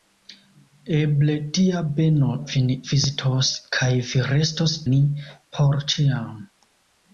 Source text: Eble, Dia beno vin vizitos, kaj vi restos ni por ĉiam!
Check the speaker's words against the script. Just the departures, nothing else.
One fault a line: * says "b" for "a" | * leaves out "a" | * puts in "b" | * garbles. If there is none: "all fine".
all fine